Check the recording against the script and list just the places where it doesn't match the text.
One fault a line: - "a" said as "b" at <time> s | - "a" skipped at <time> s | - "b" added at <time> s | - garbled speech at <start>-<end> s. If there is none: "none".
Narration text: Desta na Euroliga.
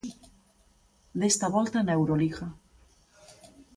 - "volta" added at 1.5 s